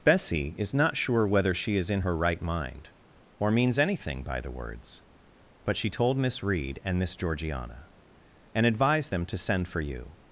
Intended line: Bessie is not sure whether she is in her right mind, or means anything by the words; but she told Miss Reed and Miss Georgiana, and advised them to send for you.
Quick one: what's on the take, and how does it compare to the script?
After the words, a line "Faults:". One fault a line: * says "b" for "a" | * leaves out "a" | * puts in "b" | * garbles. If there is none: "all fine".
Bessie is not sure whether she is in her right mind, or means anything by the words; but she told Miss Reed and Miss Georgiana, and advised them to send for you.
Faults:
all fine